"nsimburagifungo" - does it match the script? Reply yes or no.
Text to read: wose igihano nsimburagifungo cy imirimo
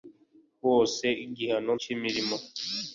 no